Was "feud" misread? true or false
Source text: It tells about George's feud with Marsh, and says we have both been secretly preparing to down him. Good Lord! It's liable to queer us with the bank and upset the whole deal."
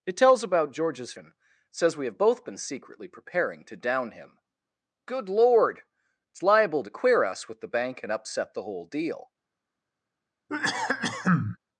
true